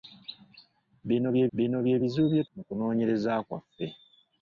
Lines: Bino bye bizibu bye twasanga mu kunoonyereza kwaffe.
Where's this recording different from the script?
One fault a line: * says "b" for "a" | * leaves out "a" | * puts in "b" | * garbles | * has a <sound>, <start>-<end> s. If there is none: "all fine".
* puts in "bino bye"
* leaves out "twasanga"